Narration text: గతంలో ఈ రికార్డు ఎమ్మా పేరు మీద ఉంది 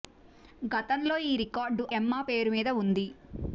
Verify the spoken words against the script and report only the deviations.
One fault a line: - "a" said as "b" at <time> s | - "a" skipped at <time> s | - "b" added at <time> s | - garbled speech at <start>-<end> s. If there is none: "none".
none